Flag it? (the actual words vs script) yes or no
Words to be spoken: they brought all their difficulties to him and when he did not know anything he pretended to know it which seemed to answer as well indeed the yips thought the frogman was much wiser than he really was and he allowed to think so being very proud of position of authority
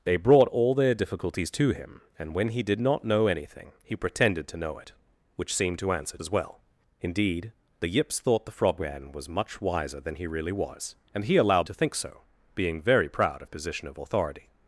no